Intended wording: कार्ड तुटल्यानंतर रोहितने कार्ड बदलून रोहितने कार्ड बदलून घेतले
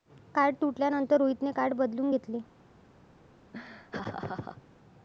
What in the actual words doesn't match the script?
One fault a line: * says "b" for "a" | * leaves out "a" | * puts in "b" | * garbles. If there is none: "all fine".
* leaves out "रोहितने कार्ड बदलून"